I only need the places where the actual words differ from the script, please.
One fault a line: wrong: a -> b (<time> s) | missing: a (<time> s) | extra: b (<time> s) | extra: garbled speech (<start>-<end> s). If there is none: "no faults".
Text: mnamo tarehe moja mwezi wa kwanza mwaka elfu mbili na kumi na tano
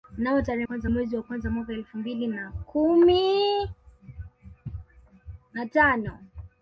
wrong: moja -> kwanza (0.6 s)